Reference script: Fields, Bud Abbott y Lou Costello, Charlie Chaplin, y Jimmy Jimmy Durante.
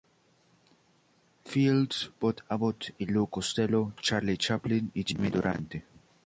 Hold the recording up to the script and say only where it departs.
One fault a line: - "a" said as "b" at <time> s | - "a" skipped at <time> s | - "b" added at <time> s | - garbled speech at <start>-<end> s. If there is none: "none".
- "Jimmy" skipped at 5.3 s